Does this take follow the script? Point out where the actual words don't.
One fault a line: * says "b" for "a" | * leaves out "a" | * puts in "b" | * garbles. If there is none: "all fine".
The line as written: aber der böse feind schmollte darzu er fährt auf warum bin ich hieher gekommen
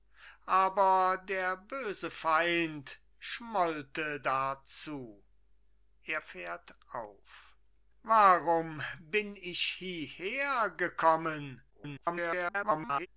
* garbles